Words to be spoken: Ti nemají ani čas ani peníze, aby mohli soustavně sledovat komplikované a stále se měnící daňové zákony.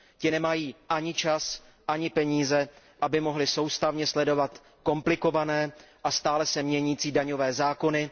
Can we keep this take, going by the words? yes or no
yes